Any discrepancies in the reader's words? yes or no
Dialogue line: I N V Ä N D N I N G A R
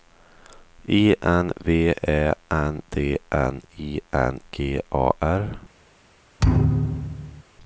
no